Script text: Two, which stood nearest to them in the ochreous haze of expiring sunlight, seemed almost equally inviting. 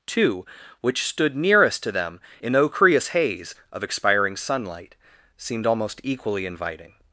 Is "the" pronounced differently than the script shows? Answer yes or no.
yes